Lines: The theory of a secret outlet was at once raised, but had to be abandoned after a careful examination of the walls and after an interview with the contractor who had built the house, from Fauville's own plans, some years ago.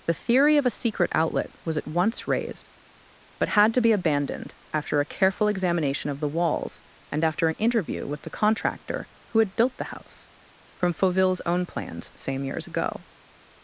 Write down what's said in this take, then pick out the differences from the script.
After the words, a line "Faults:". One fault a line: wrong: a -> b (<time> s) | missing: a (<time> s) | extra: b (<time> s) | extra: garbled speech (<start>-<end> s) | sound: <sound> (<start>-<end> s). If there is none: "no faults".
The theory of a secret outlet was at once raised, but had to be abandoned after a careful examination of the walls and after an interview with the contractor who had built the house, from Fauville's own plans, same years ago.
Faults:
wrong: some -> same (12.1 s)